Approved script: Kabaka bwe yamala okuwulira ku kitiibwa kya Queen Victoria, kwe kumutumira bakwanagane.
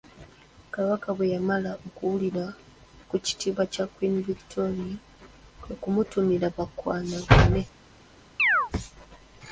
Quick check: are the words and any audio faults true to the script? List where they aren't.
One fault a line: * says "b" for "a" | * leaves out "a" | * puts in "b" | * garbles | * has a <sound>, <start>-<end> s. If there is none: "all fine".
* has a chirp, 8.4-8.7 s